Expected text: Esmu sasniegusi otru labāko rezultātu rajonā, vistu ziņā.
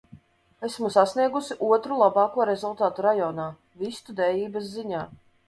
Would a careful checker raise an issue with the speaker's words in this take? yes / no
yes